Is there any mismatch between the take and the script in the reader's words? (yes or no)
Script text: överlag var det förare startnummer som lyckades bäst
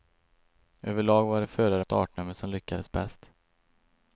no